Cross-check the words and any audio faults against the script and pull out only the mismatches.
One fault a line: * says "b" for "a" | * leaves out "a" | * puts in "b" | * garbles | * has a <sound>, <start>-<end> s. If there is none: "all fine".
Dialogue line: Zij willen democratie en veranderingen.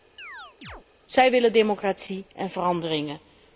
* has a chirp, 0.2-0.8 s